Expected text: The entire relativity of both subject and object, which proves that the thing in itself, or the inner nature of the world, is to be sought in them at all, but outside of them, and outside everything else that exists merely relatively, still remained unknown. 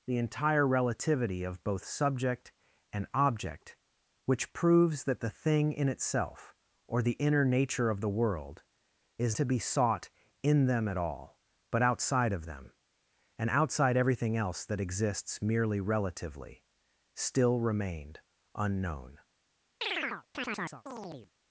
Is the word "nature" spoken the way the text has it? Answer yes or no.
yes